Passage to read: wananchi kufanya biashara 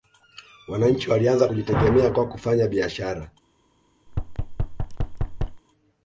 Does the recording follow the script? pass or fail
fail